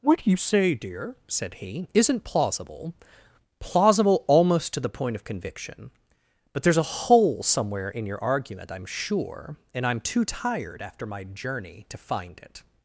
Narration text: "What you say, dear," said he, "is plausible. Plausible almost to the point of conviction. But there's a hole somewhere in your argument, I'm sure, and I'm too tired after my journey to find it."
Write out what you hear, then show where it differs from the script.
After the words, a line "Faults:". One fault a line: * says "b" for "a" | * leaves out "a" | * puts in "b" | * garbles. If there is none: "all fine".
"What you say, dear," said he, "isn't plausible. Plausible almost to the point of conviction. But there's a hole somewhere in your argument, I'm sure, and I'm too tired after my journey to find it."
Faults:
* says "isn't" for "is"